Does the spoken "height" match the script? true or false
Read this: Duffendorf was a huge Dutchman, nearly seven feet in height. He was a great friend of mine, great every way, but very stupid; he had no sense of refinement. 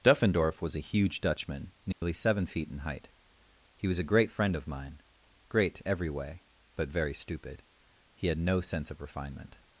true